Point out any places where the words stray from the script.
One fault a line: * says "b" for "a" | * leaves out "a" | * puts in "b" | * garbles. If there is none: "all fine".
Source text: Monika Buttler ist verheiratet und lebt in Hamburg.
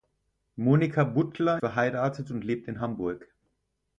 * leaves out "ist"